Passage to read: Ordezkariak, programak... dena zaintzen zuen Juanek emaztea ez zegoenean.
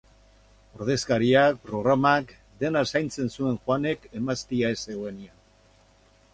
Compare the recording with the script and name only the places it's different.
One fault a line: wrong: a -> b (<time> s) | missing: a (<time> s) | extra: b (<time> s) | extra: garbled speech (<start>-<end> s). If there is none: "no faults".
no faults